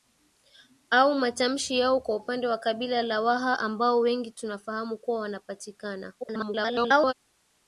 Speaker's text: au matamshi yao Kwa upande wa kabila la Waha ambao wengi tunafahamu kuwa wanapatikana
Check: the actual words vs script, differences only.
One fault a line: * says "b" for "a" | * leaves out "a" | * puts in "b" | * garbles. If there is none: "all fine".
* garbles